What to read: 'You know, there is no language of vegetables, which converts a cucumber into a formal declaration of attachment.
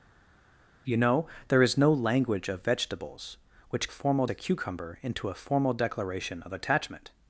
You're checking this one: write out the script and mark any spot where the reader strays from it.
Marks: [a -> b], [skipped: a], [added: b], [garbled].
'You know, there is no language of vegetables, which [converts -> formal] a cucumber into a formal declaration of attachment.